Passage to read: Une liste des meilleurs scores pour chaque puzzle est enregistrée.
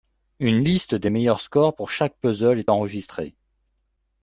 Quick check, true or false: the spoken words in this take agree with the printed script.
true